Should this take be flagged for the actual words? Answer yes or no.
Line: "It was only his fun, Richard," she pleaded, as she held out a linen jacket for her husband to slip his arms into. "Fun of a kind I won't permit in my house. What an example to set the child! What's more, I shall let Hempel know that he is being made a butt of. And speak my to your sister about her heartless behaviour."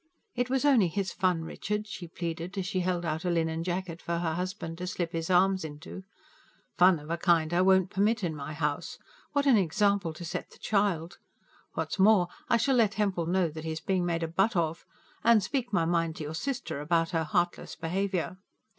yes